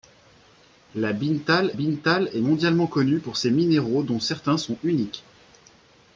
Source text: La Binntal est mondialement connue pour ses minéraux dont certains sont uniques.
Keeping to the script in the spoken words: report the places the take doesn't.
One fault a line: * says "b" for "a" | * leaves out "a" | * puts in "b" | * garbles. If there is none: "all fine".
* puts in "Binntal"